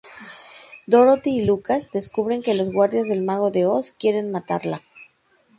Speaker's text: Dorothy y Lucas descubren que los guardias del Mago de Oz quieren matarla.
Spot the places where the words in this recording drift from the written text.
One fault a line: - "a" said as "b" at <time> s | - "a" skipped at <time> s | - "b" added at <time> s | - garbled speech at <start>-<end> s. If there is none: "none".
none